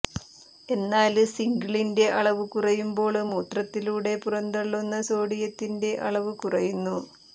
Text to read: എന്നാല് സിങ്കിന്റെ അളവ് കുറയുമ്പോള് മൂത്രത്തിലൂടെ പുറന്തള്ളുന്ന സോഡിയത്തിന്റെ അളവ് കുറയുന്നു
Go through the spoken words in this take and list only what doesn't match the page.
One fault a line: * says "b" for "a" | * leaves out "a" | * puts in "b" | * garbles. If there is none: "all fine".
all fine